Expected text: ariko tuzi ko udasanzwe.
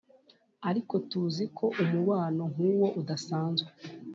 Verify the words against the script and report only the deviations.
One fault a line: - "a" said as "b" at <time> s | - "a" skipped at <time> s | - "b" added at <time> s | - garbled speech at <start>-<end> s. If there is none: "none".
- "umubano nk'uwo" added at 1.8 s